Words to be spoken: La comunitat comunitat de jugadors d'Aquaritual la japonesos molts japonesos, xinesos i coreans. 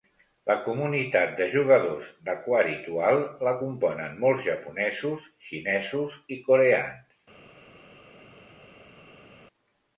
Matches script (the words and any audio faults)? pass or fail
fail